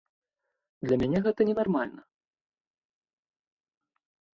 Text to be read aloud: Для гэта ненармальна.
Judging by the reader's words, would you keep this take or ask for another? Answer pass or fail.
fail